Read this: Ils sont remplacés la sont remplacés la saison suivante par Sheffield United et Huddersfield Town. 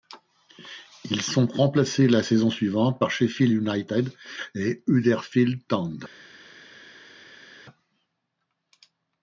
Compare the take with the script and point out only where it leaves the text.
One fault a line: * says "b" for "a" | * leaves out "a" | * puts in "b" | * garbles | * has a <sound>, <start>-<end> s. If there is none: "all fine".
* leaves out "sont remplacés la"